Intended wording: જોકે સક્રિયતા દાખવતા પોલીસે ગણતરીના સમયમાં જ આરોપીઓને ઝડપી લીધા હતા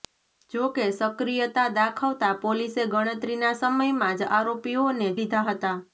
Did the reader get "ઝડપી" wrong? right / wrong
wrong